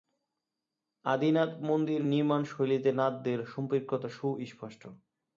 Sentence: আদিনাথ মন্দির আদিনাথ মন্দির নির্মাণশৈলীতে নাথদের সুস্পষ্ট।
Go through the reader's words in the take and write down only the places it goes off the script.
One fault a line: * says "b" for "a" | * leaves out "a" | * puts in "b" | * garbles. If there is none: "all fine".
* leaves out "আদিনাথ মন্দির"
* puts in "সম্পৃক্ততা"